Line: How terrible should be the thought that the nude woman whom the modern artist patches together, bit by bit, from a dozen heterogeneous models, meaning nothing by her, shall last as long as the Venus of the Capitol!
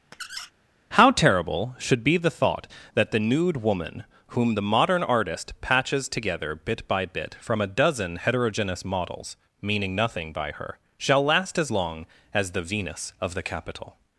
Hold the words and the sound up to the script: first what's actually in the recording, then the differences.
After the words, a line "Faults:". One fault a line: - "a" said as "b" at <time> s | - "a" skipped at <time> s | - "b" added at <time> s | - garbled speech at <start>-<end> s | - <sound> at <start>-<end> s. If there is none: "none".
How terrible should be the thought that the nude woman whom the modern artist patches together, bit by bit, from a dozen heterogeneous models, meaning nothing by her, shall last as long as the Venus of the Capitol!
Faults:
- squeak at 0.1-0.5 s